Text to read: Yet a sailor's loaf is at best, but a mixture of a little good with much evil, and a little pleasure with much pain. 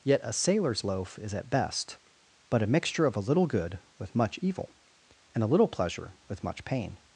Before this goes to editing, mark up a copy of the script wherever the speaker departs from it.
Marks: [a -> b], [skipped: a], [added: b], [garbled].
Yet a sailor's loaf is at best, but a mixture of a little good with much evil, and a little pleasure with much pain.